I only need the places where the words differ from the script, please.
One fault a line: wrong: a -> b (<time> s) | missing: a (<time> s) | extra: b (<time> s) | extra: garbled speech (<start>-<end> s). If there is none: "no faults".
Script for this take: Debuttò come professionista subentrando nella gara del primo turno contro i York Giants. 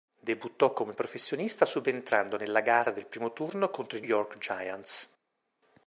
no faults